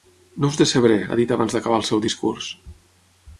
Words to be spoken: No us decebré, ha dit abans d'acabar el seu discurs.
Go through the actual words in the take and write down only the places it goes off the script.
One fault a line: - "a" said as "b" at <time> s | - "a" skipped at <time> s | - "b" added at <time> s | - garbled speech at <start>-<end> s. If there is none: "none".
none